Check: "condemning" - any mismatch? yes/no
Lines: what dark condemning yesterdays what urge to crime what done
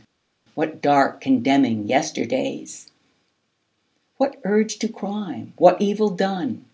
no